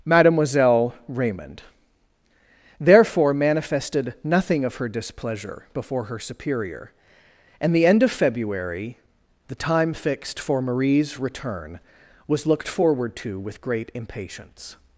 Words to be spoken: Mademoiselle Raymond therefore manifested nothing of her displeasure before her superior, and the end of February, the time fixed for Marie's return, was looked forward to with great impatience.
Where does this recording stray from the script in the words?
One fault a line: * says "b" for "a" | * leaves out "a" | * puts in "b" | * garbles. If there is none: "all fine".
all fine